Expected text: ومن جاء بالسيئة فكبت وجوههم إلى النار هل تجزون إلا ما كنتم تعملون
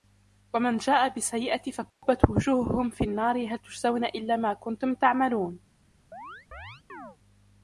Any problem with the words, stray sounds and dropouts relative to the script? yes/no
yes